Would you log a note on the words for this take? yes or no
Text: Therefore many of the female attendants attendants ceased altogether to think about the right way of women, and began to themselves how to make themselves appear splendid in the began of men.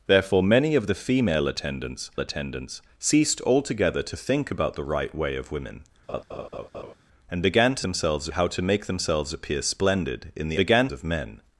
no